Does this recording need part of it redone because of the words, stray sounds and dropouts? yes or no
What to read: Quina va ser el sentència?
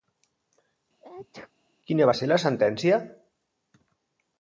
yes